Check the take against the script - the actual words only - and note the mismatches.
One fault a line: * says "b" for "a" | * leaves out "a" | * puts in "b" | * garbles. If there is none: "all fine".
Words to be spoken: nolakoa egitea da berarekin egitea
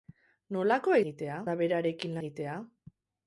all fine